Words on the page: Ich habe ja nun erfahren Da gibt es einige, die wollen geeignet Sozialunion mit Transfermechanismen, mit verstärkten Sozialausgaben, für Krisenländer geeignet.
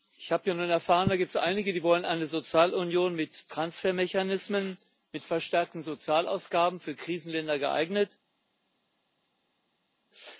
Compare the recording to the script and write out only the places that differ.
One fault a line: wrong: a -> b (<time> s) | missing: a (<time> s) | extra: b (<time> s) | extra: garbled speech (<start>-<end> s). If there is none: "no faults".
wrong: geeignet -> eine (2.0 s)